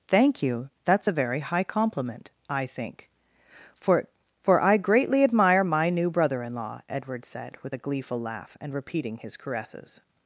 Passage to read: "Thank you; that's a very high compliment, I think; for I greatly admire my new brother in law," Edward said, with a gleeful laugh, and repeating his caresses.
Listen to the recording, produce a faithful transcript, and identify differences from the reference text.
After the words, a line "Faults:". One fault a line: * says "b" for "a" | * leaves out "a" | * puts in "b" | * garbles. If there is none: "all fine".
"Thank you; that's a very high compliment, I think; for for I greatly admire my new brother in law," Edward said, with a gleeful laugh, and repeating his caresses.
Faults:
* puts in "for"